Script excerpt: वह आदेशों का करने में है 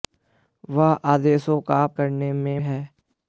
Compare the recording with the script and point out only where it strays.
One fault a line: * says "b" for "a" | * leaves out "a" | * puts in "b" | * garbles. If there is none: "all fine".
all fine